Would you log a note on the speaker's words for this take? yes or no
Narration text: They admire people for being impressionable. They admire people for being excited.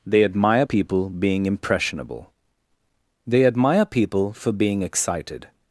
yes